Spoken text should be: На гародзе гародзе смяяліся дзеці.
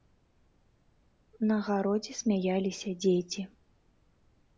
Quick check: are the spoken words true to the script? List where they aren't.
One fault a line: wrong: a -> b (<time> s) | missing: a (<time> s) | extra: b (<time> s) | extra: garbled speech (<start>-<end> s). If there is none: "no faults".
missing: гародзе (2.1 s)